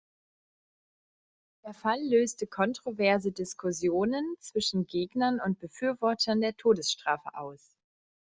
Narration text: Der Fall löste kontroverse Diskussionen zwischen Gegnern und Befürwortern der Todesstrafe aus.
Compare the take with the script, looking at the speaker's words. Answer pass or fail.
pass